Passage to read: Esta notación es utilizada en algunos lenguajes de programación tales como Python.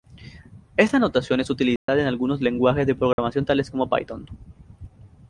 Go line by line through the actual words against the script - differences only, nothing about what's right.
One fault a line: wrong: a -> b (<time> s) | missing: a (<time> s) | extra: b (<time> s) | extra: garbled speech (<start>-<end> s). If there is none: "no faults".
no faults